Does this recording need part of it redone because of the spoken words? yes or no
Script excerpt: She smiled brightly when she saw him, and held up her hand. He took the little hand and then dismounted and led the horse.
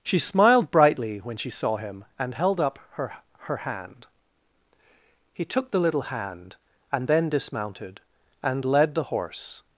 yes